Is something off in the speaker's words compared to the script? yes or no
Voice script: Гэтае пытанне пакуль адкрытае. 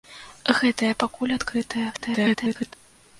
yes